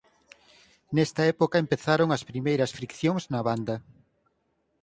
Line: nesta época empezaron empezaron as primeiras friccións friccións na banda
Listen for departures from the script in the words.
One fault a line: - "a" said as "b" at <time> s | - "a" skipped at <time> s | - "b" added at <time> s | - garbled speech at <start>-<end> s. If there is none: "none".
- "empezaron" skipped at 2.1 s
- "friccións" skipped at 3.2 s